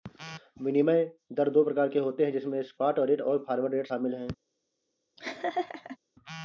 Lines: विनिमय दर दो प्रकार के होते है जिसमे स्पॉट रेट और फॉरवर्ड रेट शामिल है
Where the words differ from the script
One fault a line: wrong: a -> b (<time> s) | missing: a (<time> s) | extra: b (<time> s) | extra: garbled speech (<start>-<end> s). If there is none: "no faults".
no faults